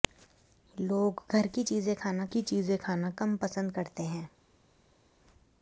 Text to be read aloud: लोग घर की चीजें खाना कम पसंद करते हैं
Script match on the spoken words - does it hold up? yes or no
no